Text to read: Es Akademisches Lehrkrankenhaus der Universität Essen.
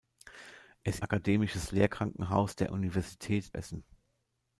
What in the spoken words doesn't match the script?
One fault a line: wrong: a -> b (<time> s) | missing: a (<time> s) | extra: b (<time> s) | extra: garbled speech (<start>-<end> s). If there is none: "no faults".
no faults